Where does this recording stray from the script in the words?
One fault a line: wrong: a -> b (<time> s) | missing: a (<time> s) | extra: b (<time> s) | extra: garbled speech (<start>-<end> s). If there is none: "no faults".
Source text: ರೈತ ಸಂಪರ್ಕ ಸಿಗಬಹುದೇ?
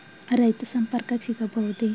no faults